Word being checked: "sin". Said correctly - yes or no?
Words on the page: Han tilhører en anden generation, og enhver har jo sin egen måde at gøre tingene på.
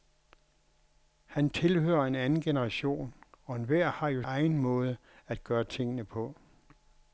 no